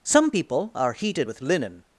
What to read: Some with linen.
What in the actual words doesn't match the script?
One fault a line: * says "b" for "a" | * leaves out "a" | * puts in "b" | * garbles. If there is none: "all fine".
* puts in "people are heated"